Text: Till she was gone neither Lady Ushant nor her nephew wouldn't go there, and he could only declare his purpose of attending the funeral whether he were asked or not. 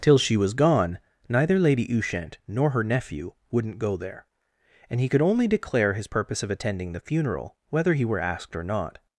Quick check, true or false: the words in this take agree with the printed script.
true